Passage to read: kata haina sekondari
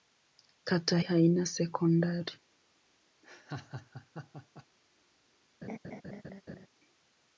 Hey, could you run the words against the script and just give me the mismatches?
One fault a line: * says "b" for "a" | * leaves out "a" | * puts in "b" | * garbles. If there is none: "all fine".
all fine